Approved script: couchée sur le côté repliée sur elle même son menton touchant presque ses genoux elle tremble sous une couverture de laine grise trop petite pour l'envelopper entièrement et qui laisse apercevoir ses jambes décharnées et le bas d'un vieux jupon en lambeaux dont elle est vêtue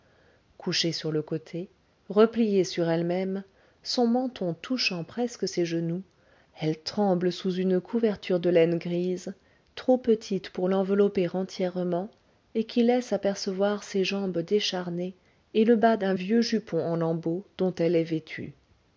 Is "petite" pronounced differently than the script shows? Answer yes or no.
no